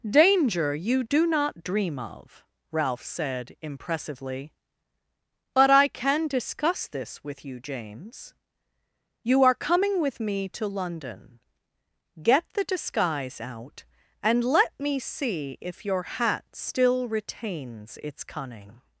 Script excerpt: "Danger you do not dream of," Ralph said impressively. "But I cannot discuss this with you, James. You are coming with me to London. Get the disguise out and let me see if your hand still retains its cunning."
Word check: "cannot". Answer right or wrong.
wrong